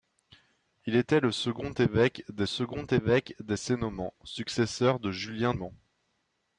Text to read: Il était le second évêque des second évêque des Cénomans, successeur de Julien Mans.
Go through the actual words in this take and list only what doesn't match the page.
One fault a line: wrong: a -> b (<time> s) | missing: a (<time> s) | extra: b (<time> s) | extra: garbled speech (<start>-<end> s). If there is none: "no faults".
no faults